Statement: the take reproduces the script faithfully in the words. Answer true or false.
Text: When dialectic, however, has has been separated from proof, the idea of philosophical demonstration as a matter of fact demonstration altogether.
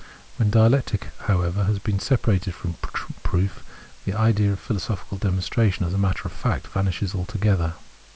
false